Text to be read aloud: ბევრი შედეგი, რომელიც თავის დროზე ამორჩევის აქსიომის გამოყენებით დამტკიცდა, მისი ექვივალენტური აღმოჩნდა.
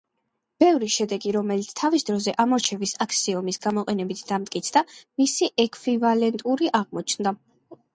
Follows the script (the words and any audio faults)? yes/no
yes